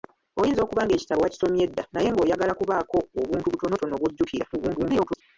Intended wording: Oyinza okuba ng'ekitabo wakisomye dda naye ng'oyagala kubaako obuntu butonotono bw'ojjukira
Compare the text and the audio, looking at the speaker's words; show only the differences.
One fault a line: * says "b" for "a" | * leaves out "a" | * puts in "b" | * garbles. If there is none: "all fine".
* garbles